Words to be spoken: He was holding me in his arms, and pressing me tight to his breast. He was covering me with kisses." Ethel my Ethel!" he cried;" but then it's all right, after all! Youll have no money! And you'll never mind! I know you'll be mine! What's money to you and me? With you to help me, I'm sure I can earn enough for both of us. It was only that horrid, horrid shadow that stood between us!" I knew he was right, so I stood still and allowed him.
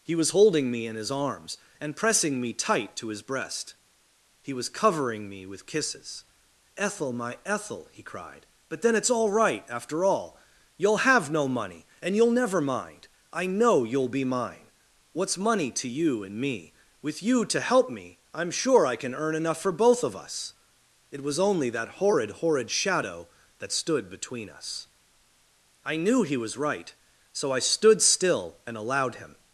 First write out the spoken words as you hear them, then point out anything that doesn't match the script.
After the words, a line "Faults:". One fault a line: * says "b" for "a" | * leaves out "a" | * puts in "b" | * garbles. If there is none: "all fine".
He was holding me in his arms, and pressing me tight to his breast. He was covering me with kisses." Ethel my Ethel!" he cried;" but then it's all right, after all! Youll have no money! And you'll never mind! I know you'll be mine! What's money to you and me? With you to help me, I'm sure I can earn enough for both of us. It was only that horrid, horrid shadow that stood between us!" I knew he was right, so I stood still and allowed him.
Faults:
all fine